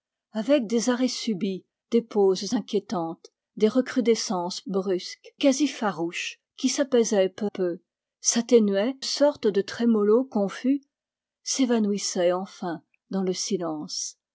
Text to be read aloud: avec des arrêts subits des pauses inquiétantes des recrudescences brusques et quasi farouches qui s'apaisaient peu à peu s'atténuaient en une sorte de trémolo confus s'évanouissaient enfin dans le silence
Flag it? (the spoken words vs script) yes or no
yes